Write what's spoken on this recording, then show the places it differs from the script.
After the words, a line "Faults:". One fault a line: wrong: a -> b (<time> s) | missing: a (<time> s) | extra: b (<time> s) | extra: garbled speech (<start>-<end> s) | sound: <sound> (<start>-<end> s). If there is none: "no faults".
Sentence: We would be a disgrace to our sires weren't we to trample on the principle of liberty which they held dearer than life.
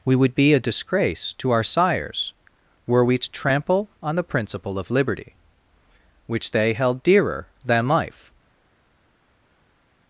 We would be a disgrace to our sires were we to trample on the principle of liberty which they held dearer than life.
Faults:
wrong: weren't -> were (2.9 s)